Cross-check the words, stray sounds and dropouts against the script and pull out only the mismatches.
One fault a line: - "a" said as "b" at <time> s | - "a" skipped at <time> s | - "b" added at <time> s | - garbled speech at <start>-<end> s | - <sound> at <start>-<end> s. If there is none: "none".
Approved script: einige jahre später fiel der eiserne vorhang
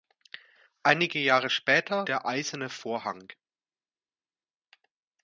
- "fiel" skipped at 2.1 s